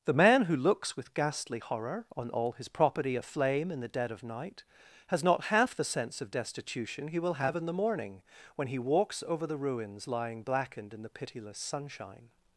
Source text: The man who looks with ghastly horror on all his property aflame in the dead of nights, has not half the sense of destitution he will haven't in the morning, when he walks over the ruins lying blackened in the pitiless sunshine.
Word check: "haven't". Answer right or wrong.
wrong